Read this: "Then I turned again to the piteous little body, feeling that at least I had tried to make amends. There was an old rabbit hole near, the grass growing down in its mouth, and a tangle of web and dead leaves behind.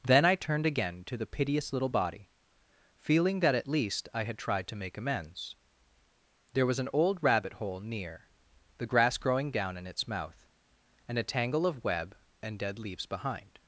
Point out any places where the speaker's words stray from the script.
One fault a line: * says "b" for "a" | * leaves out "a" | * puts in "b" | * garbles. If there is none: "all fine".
all fine